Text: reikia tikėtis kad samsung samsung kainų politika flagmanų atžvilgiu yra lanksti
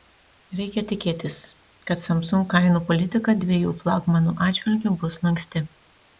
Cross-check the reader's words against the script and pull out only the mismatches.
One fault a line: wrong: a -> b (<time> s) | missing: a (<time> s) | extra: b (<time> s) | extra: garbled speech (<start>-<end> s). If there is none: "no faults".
missing: samsung (2.5 s)
extra: dviejų (3.4 s)
wrong: yra -> bus (5.0 s)